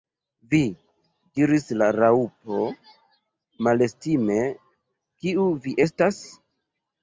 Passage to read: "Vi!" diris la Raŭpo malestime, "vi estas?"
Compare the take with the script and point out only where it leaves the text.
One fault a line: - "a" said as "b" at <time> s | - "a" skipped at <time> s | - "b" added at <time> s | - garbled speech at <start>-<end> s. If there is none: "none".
- "kiu" added at 5.2 s